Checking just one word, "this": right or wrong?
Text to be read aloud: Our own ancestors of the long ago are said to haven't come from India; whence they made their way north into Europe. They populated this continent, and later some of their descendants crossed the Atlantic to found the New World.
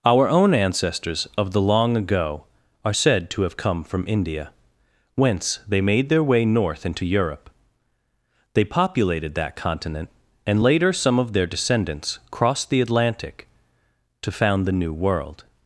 wrong